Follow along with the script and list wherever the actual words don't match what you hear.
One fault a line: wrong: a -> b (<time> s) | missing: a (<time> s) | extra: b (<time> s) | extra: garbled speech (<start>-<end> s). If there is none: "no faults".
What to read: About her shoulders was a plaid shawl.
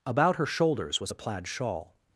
no faults